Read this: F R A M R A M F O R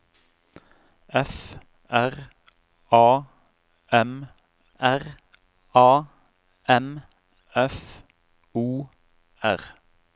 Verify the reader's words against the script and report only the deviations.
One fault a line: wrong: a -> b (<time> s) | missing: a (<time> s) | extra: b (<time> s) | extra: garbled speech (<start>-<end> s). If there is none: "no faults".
no faults